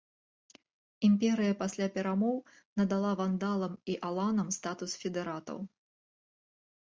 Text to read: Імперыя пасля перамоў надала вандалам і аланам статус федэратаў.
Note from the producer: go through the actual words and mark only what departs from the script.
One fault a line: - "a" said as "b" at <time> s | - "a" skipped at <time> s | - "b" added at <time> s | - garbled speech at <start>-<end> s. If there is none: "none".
none